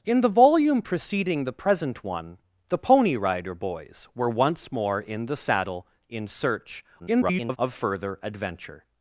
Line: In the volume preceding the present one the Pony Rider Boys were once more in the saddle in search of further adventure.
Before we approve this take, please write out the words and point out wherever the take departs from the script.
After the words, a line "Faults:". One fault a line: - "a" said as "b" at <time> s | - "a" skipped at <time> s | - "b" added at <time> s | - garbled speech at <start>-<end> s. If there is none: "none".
In the volume preceding the present one the Pony Rider Boys were once more in the saddle in search [garbled] of further adventure.
Faults:
- garbled speech at 7.0-7.6 s